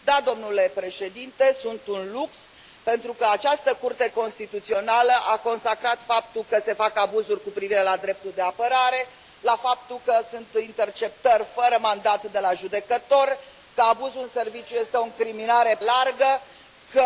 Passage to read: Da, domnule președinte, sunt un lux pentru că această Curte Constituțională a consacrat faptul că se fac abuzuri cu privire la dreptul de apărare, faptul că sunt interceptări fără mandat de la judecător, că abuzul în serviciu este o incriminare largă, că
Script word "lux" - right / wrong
right